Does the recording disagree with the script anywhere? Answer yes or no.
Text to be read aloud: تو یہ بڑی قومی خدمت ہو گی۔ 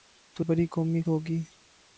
yes